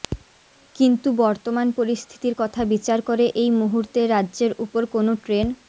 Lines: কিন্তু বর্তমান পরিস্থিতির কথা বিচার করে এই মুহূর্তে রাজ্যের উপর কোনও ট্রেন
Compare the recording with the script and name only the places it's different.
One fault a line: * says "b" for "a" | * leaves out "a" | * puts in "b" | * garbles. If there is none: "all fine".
all fine